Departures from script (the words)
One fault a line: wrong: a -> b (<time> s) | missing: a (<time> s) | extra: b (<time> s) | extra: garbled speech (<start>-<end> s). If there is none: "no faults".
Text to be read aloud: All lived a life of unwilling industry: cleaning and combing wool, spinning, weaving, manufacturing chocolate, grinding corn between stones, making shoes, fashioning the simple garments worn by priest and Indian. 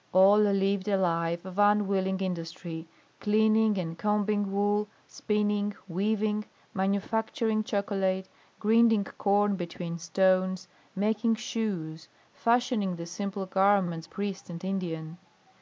missing: worn by (14.1 s)